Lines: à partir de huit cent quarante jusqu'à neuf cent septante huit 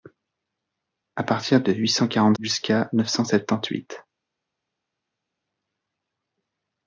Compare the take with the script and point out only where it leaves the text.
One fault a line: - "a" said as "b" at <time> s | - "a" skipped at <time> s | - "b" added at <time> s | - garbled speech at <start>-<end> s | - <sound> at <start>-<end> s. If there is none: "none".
none